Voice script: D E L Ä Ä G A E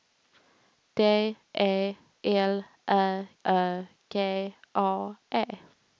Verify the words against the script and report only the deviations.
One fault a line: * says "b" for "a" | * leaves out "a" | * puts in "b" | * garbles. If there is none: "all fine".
all fine